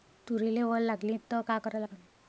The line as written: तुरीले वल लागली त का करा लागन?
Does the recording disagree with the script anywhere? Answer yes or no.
no